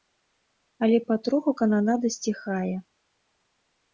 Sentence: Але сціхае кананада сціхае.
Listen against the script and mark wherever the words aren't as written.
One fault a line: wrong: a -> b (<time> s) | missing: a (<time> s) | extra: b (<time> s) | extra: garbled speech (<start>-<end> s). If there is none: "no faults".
wrong: сціхае -> патроху (1.1 s)